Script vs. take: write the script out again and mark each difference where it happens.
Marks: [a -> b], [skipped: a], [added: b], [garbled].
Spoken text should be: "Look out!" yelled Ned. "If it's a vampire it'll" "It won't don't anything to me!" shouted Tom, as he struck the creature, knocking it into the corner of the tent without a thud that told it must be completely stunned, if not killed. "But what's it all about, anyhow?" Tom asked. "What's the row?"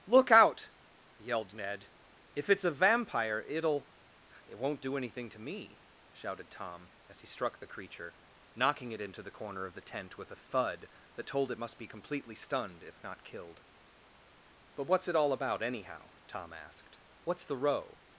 "Look out!" yelled Ned. "If it's a vampire it'll" "It won't [don't -> do] anything to me!" shouted Tom, as he struck the creature, knocking it into the corner of the tent [without -> with] a thud that told it must be completely stunned, if not killed. "But what's it all about, anyhow?" Tom asked. "What's the row?"